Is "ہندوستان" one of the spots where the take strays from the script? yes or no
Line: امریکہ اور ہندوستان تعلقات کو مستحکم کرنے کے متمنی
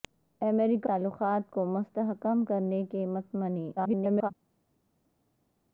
yes